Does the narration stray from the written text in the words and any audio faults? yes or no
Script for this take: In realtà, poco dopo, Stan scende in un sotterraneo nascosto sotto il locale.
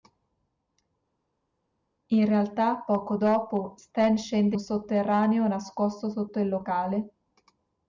yes